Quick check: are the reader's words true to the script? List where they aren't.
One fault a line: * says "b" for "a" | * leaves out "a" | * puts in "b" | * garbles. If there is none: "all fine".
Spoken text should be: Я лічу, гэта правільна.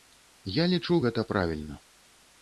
all fine